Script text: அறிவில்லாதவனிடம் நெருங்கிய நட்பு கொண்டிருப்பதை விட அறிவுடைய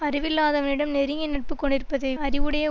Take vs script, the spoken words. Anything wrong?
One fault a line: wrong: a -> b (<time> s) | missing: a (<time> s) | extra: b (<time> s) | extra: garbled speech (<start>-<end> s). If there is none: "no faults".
missing: விட (2.1 s)